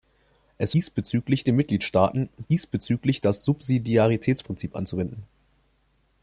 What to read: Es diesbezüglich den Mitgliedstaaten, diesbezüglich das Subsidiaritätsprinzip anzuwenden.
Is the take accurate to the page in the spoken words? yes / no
yes